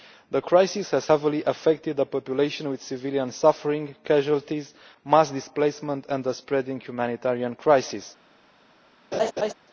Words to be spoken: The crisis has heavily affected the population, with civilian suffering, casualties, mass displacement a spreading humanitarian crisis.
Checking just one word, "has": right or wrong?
right